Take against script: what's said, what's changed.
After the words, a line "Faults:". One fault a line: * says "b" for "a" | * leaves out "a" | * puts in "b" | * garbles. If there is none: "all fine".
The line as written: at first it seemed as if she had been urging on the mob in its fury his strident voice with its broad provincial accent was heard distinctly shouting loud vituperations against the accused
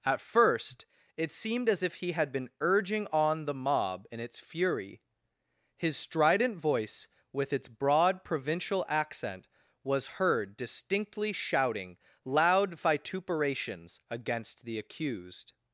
at first it seemed as if he had been urging on the mob in its fury his strident voice with its broad provincial accent was heard distinctly shouting loud vituperations against the accused
Faults:
* says "he" for "she"